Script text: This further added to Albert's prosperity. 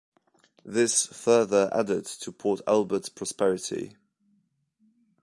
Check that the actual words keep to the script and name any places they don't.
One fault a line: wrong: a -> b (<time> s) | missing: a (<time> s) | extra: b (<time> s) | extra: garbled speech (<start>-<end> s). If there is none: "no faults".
extra: Port (2.3 s)